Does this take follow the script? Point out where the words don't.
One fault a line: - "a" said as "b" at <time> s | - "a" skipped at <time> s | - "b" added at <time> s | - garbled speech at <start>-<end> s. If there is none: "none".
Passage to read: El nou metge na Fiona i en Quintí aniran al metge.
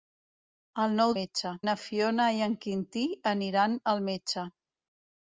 none